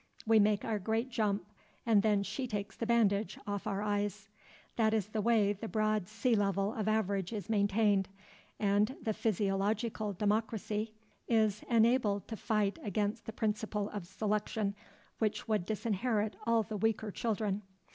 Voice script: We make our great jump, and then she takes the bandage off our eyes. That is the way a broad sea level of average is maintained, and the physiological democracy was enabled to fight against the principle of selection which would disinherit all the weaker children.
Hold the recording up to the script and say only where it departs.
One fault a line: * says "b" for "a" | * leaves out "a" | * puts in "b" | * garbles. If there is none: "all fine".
* says "the" for "a"
* says "is" for "was"